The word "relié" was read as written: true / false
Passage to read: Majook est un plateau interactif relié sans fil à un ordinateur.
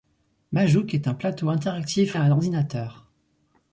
false